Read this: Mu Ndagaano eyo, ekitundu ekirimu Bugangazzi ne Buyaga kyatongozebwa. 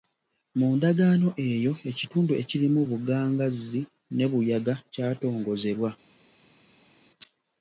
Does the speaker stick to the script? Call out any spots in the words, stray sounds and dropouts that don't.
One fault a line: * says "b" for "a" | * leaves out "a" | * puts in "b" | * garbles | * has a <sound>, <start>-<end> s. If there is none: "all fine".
all fine